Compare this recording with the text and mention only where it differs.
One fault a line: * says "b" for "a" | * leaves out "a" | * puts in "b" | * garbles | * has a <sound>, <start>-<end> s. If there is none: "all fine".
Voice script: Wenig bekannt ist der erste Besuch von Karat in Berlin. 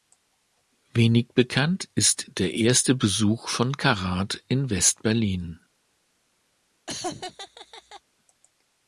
* puts in "West"
* has a laugh, 6.9-8.0 s